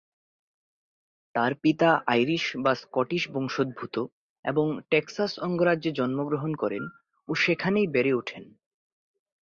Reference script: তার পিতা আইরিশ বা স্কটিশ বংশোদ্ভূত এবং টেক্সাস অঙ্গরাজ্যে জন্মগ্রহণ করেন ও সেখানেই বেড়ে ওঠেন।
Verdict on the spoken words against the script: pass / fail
pass